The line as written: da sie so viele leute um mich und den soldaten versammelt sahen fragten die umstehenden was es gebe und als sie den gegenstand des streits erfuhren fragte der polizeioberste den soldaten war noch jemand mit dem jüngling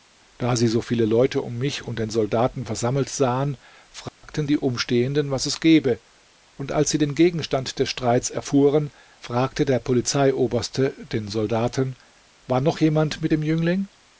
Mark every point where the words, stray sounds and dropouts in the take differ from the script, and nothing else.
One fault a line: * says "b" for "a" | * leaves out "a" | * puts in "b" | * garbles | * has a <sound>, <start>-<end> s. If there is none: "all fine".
* has a dropout, 4.1-4.2 s